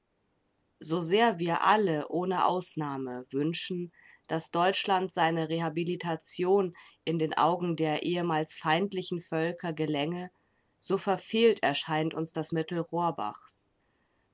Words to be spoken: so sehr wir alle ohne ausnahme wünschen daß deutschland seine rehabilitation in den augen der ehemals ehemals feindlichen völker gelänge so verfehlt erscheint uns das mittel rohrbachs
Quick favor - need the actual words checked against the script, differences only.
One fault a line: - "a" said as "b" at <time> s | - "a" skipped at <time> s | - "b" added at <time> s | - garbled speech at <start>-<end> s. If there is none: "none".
- "ehemals" skipped at 8.5 s